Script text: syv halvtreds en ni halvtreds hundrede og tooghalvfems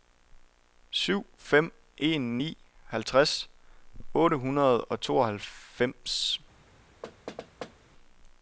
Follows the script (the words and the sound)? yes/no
no